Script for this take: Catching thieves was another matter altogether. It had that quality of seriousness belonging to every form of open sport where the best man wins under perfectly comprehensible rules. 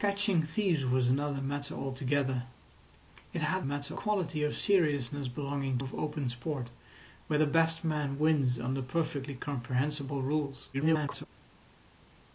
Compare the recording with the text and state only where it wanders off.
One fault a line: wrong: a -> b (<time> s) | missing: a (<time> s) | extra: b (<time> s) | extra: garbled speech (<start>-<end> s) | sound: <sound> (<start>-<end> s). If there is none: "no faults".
wrong: that -> matter (3.6 s)
missing: to every form (5.8 s)
extra: garbled speech (10.7-11.3 s)